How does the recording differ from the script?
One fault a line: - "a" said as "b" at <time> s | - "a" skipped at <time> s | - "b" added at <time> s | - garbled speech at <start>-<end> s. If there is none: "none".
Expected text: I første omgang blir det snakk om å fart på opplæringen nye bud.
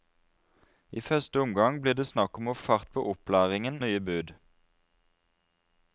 none